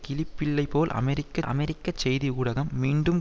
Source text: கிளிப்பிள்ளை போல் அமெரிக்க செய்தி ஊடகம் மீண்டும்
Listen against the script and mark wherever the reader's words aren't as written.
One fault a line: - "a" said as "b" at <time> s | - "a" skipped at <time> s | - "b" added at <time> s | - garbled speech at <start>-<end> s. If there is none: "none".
- "அமெரிக்க" added at 1.4 s